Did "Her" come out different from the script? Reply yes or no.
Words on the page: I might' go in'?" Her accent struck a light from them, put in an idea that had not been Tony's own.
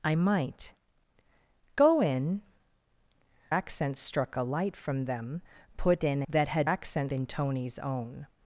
yes